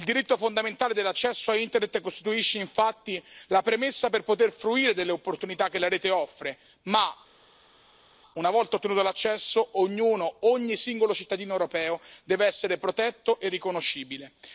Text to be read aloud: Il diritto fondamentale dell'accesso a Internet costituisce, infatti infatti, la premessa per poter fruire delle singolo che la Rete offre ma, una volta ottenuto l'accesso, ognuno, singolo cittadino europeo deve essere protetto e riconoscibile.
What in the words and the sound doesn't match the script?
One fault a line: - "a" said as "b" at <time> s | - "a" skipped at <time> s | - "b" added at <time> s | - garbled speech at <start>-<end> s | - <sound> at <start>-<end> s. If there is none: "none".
- "infatti" skipped at 3.2 s
- "singolo" said as "opportunità" at 5.1 s
- "ogni" added at 10.4 s